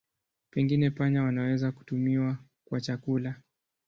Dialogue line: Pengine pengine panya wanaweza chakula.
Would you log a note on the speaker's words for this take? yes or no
yes